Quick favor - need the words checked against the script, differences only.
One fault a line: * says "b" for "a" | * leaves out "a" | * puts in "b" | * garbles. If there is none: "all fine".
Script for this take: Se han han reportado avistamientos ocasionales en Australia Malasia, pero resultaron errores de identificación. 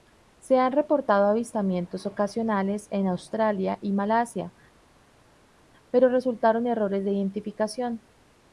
* leaves out "han"
* puts in "y"